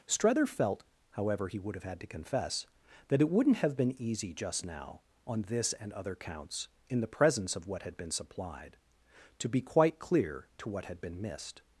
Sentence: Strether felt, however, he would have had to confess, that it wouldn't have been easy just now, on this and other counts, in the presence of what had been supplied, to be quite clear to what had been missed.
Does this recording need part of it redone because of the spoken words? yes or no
no